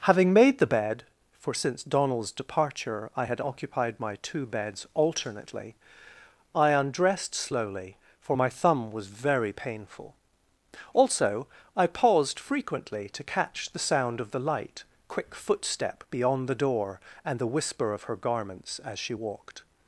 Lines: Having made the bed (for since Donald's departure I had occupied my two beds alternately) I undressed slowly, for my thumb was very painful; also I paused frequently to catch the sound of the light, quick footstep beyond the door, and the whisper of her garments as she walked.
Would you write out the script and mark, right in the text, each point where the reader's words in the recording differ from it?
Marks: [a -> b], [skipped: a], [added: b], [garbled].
Having made the bed (for since Donald's departure I had occupied my two beds alternately) I undressed slowly, for my thumb was very painful; also I paused frequently to catch the sound of the light, quick footstep beyond the door, and the whisper of her garments as she walked.